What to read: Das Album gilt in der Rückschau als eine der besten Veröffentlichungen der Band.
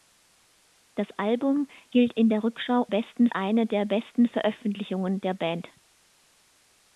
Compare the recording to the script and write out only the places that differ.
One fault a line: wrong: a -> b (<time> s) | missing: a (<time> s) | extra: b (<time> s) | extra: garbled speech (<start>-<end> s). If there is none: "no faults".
wrong: als -> besten (2.9 s)